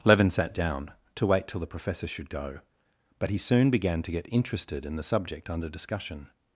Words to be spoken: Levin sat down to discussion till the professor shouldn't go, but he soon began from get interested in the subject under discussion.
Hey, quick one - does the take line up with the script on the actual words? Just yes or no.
no